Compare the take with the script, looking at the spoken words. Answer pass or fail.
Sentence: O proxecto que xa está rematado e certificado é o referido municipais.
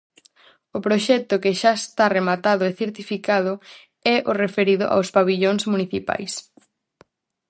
fail